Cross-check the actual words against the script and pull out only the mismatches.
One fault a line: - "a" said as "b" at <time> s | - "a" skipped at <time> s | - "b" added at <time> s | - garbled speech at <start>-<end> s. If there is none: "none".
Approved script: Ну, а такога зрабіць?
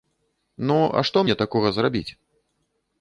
- "што мне" added at 1.1 s